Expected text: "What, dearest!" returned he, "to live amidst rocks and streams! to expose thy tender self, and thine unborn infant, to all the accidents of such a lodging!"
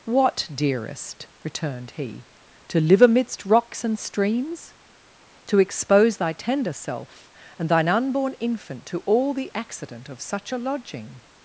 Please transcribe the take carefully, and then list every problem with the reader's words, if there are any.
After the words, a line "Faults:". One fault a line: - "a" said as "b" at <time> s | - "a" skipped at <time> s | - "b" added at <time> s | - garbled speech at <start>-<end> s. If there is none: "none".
"What, dearest!" returned he, "to live amidst rocks and streams! to expose thy tender self, and thine unborn infant, to all the accident of such a lodging!"
Faults:
- "accidents" said as "accident" at 9.6 s